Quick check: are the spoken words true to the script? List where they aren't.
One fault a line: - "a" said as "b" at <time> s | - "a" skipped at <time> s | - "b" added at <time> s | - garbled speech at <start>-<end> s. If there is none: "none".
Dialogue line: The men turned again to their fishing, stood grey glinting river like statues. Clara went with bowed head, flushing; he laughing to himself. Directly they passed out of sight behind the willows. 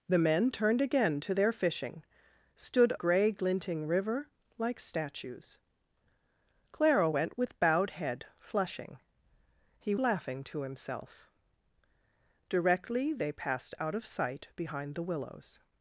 none